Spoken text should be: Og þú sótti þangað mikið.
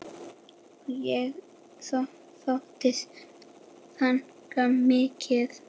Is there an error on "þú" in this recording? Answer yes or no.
yes